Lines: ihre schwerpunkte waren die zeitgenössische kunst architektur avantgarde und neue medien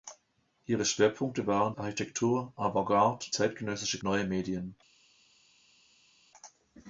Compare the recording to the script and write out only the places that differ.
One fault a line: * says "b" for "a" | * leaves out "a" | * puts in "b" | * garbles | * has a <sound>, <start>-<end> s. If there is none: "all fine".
* leaves out "die zeitgenössische kunst"
* says "zeitgenössische" for "und"